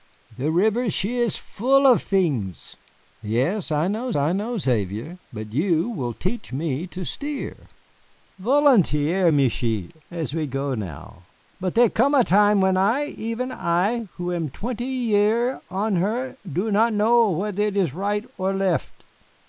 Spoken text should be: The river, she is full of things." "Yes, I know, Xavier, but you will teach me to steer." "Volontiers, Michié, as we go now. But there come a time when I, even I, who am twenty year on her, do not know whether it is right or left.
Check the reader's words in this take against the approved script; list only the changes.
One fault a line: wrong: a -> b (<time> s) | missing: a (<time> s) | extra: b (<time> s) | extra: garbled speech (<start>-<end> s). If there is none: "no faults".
extra: I know (4.1 s)